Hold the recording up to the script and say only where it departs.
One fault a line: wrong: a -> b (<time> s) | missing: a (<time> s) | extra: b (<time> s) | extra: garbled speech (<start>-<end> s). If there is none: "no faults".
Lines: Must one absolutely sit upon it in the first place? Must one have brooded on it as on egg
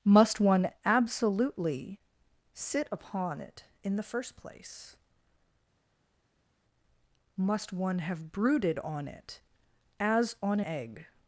no faults